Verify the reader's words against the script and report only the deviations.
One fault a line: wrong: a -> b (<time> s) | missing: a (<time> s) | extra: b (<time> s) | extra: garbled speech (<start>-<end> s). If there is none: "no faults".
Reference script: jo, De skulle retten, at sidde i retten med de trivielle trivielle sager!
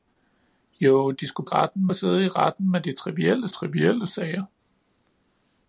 no faults